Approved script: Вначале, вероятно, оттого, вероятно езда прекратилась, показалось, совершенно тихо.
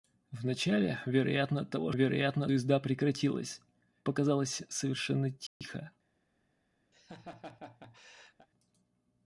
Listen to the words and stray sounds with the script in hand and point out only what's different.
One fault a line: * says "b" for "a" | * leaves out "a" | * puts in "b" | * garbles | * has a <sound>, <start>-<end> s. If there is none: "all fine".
* has a dropout, 5.5-5.6 s
* has a laugh, 6.9-8.5 s